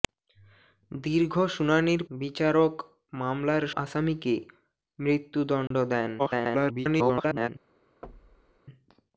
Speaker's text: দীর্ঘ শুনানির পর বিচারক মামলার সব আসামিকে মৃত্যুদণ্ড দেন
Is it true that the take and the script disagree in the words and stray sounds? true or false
true